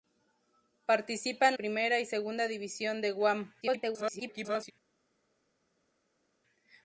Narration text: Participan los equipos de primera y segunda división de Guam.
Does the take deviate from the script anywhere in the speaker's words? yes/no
yes